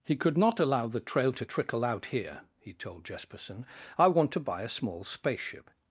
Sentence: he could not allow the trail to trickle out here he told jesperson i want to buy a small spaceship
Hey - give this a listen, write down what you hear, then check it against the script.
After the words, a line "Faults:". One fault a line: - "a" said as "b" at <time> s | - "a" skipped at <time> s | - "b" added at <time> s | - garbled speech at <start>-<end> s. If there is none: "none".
he could not allow the trail to trickle out here he told jesperson i want to buy a small spaceship
Faults:
none